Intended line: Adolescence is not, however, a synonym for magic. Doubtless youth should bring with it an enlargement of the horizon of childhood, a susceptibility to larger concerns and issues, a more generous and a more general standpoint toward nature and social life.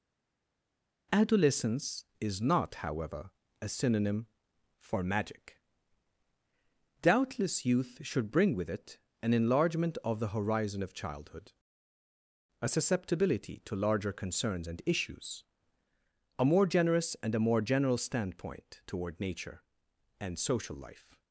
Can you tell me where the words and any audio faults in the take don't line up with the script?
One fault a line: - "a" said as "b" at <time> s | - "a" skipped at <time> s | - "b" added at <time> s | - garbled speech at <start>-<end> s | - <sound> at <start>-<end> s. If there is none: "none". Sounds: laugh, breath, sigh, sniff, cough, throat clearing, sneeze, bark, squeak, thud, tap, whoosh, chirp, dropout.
none